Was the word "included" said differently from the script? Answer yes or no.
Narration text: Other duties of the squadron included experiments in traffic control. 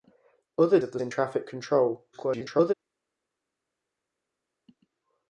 yes